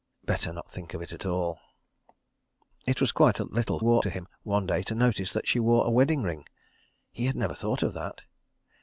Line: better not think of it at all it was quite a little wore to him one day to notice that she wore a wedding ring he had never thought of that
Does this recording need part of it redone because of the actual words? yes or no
no